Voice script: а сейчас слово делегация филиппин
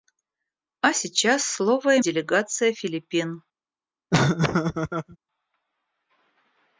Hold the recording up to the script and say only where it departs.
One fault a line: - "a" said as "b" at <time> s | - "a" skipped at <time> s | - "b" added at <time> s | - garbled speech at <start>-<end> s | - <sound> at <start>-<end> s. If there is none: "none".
- laugh at 4.1-5.2 s